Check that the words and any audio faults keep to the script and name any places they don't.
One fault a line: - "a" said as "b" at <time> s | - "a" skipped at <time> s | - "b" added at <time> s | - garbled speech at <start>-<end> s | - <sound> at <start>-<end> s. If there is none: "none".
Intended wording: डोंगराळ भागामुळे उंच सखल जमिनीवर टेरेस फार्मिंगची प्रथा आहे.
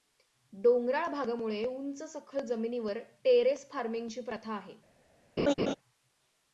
- laugh at 5.4-5.7 s